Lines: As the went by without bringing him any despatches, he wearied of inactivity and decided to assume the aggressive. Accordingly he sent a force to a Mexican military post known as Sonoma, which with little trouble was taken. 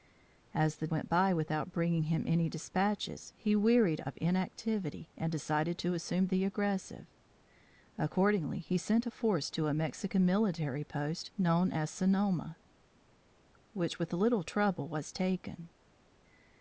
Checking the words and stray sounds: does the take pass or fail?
pass